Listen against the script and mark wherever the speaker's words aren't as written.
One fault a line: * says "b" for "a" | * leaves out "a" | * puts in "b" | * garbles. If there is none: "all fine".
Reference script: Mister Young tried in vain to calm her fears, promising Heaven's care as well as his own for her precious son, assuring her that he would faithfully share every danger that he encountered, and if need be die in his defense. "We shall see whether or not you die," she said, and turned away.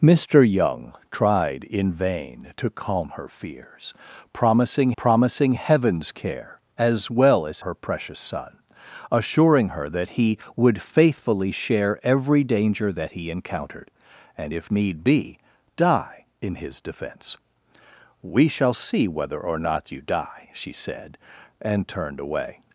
* puts in "promising"
* leaves out "his own for"